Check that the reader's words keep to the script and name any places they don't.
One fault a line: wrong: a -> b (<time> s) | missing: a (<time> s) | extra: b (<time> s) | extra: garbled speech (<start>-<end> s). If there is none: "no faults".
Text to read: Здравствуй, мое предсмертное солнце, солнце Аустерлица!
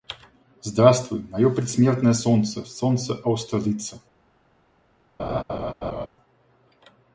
no faults